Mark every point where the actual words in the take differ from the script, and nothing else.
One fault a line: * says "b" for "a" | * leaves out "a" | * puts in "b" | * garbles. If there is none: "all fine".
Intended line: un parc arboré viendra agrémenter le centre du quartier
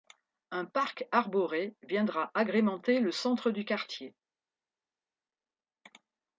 all fine